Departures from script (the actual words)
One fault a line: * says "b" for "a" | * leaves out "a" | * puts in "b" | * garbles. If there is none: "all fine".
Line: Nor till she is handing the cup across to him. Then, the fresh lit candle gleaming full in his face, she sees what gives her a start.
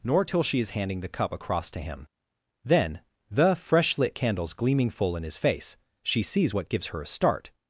* says "candles" for "candle"